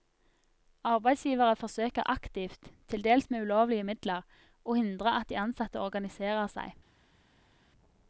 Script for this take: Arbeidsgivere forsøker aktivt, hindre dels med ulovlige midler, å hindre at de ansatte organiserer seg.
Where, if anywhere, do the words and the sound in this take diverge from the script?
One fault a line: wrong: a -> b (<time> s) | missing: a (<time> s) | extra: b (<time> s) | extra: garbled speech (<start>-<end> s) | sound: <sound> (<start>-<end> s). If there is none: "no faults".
wrong: hindre -> til (2.9 s)